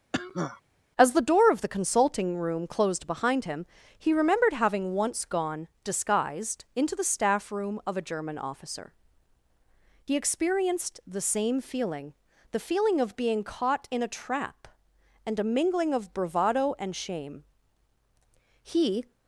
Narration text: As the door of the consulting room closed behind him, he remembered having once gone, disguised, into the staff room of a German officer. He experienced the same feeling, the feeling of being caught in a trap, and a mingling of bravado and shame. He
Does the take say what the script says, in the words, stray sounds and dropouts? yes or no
no